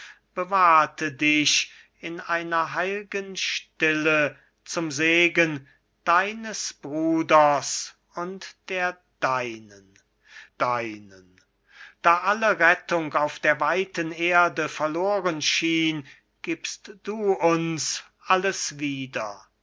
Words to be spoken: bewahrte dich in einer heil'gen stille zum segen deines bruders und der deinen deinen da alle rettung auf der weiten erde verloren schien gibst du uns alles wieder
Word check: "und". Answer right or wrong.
right